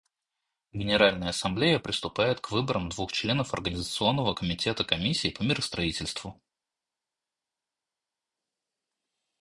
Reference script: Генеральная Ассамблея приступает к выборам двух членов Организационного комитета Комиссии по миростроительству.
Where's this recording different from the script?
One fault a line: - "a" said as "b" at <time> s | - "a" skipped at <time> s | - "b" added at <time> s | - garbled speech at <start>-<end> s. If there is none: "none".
none